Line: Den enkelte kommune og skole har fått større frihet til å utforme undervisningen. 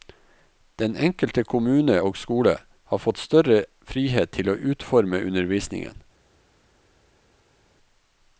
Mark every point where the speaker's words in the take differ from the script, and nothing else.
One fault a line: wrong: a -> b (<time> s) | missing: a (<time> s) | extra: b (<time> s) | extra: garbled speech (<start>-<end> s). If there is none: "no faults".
no faults